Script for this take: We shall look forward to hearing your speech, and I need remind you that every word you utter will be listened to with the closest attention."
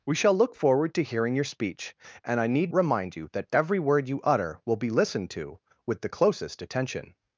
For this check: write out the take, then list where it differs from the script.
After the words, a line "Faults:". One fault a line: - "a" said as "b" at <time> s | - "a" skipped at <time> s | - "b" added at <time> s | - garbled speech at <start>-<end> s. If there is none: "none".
We shall look forward to hearing your speech, and I need remind you that every word you utter will be listened to with the closest attention."
Faults:
none